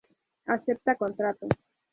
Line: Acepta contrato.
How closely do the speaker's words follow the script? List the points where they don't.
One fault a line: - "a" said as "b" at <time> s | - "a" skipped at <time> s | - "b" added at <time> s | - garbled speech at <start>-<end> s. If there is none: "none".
none